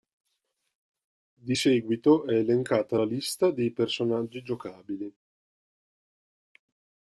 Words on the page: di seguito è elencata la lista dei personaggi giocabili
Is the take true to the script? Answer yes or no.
yes